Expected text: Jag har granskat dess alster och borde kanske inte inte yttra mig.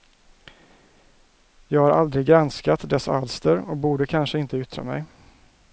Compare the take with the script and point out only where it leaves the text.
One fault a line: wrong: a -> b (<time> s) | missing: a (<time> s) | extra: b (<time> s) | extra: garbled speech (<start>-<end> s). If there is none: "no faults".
extra: aldrig (1.9 s)
missing: inte (4.6 s)